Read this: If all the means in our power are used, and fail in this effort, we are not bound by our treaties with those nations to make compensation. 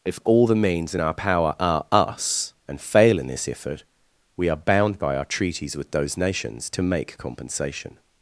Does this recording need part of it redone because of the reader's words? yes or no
yes